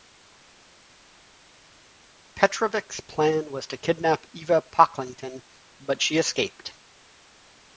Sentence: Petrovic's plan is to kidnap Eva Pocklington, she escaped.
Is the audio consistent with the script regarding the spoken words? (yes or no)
no